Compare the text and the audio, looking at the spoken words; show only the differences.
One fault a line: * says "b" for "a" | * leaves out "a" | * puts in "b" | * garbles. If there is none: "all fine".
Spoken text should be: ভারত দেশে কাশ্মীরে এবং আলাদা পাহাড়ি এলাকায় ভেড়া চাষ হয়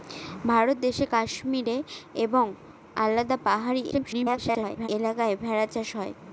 * garbles